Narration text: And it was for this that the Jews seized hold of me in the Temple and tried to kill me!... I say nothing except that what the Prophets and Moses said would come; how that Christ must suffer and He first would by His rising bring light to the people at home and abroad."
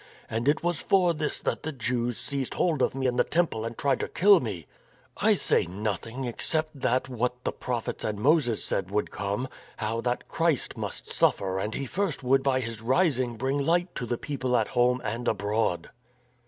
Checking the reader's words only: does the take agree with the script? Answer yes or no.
yes